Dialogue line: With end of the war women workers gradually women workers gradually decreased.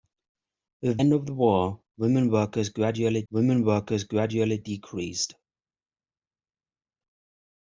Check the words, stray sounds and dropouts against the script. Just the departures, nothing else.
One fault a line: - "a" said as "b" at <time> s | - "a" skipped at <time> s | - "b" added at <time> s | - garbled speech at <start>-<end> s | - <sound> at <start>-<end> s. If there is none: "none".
none